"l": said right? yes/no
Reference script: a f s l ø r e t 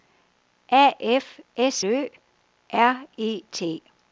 no